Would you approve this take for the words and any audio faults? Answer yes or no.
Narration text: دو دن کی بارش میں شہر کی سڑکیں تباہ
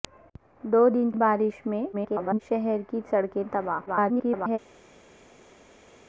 no